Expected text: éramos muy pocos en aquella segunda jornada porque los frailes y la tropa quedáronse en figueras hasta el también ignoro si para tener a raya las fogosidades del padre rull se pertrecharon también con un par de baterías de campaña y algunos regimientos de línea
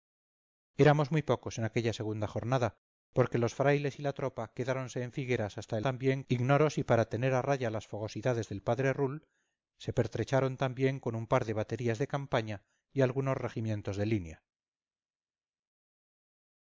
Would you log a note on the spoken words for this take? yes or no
no